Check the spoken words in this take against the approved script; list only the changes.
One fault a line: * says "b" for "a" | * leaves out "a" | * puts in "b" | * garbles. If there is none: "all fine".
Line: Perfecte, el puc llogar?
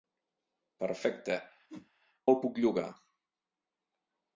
all fine